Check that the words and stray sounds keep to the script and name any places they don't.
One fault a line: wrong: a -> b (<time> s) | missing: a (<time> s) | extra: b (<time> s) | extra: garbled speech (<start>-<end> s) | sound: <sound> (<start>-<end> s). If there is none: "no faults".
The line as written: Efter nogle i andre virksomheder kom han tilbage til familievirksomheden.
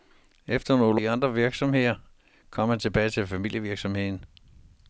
no faults